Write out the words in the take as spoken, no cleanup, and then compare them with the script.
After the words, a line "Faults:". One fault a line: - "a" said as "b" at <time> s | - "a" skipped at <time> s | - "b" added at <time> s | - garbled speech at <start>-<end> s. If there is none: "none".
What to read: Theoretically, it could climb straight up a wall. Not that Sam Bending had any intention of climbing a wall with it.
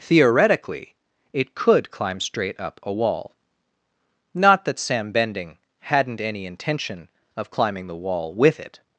Theoretically, it could climb straight up a wall. Not that Sam Bending hadn't any intention of climbing the wall with it.
Faults:
- "had" said as "hadn't" at 5.8 s
- "a" said as "the" at 7.9 s